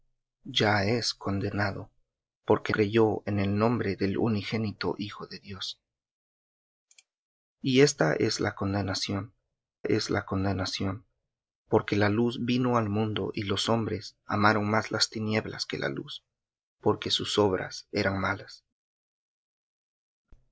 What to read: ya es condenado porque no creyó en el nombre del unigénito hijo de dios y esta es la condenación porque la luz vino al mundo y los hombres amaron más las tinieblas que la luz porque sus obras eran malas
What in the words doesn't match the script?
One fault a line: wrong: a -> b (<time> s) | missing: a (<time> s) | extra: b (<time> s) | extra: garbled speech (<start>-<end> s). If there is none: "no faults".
missing: no (2.7 s)
extra: es la condenación (9.8 s)